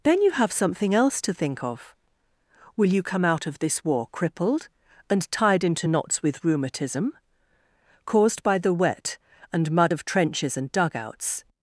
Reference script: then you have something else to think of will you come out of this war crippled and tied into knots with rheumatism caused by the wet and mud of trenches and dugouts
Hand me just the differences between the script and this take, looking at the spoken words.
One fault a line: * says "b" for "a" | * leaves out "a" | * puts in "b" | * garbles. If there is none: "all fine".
all fine